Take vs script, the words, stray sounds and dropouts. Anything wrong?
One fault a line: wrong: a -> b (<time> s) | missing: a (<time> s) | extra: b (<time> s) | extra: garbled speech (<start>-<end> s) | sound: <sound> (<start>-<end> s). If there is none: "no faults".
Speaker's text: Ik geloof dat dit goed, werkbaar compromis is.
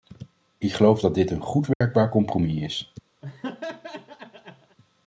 extra: een (1.3 s)
sound: dropout (1.7-1.8 s)
sound: laugh (3.2-4.8 s)